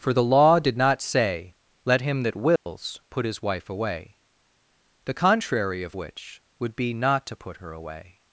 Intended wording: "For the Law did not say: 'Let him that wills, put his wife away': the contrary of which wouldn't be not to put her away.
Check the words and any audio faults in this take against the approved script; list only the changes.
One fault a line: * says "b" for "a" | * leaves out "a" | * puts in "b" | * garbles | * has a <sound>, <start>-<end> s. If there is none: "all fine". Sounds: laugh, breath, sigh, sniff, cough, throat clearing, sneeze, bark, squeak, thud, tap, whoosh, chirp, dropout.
* has a dropout, 2.6-2.7 s
* says "would" for "wouldn't"